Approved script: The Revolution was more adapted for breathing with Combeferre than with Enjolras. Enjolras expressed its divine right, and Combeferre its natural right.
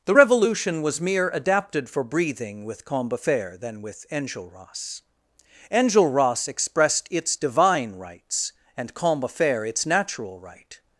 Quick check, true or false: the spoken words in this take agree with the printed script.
false